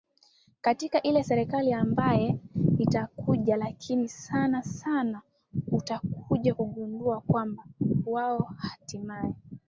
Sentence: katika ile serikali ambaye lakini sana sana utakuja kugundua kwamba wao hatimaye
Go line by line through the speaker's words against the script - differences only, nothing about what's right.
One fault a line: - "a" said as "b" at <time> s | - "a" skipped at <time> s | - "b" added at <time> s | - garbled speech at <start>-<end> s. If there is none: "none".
- "itakuja" added at 2.8 s